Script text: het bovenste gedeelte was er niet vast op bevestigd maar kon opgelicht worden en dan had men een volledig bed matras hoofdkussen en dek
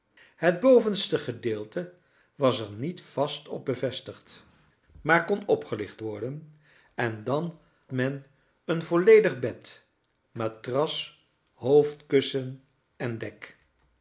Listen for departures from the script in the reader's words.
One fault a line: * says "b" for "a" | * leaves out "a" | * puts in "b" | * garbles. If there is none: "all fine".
* leaves out "had"